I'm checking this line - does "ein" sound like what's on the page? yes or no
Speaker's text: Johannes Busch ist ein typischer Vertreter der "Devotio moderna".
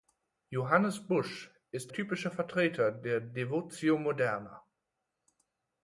no